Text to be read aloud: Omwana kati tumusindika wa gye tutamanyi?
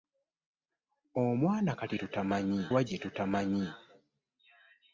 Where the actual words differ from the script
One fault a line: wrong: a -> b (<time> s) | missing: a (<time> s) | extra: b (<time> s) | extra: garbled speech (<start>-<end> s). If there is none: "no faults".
wrong: tumusindika -> tutamanyi (2.0 s)